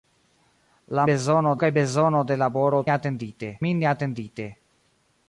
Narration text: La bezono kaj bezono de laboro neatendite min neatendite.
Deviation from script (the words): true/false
false